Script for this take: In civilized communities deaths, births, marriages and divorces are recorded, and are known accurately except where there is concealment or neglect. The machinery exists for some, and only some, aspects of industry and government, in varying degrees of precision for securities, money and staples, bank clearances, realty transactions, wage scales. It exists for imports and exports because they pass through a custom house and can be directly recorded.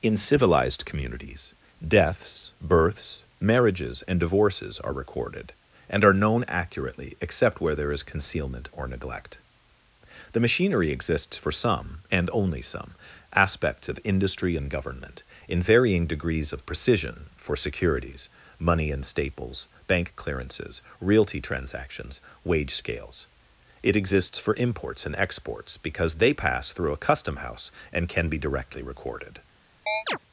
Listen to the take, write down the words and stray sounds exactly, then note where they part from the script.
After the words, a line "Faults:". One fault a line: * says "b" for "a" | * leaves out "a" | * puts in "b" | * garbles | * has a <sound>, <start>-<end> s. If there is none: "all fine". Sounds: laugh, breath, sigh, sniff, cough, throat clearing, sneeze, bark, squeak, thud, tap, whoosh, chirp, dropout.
In civilized communities deaths, births, marriages and divorces are recorded, and are known accurately except where there is concealment or neglect. The machinery exists for some, and only some, aspects of industry and government, in varying degrees of precision for securities, money and staples, bank clearances, realty transactions, wage scales. It exists for imports and exports because they pass through a custom house and can be directly recorded.
Faults:
* has a chirp, 29.9-30.2 s